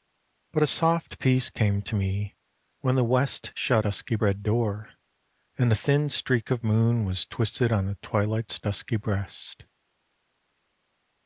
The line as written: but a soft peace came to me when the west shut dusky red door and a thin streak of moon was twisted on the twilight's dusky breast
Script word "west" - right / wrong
right